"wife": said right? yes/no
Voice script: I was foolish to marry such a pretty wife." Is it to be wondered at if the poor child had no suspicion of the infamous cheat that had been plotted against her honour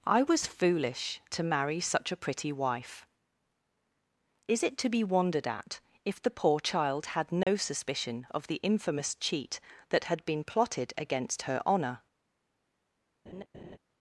yes